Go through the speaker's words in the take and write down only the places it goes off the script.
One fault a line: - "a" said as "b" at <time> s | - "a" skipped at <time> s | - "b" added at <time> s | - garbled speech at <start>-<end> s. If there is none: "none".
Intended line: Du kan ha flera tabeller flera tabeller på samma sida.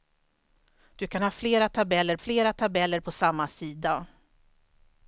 none